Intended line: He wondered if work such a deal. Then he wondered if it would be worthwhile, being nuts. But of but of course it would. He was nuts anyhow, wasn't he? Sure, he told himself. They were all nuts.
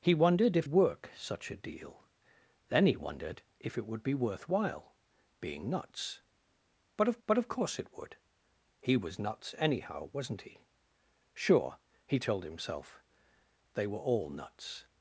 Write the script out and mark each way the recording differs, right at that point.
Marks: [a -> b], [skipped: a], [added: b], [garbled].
He wondered if work such a deal. Then he wondered if it would be worthwhile, being nuts. But of but of course it would. He was nuts anyhow, wasn't he? Sure, he told himself. They were all nuts.